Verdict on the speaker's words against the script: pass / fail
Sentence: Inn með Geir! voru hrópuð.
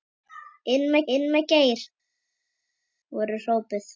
fail